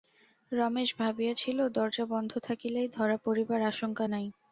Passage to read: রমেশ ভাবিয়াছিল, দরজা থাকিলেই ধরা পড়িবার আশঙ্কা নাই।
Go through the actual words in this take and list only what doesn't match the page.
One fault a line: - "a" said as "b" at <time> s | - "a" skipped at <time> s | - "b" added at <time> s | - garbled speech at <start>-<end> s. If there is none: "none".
- "বন্ধ" added at 2.0 s